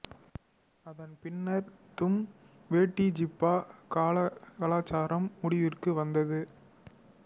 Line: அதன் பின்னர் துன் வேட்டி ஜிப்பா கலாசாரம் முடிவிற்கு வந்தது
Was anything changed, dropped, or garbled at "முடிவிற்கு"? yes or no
no